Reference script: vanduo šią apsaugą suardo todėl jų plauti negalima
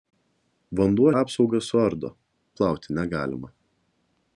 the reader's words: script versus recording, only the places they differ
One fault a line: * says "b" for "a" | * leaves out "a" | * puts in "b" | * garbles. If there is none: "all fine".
* leaves out "šią"
* leaves out "todėl jų"